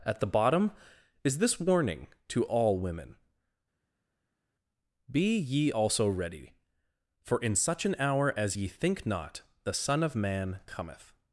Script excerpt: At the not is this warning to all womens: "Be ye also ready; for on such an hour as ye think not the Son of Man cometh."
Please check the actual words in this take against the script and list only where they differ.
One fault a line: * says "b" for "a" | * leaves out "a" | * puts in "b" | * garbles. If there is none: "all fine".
* says "bottom" for "not"
* says "women" for "womens"
* says "in" for "on"